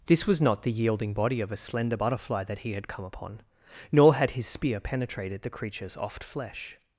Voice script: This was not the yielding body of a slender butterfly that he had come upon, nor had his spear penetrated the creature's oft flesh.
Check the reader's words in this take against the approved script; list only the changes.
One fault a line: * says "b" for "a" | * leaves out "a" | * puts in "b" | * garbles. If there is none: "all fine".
all fine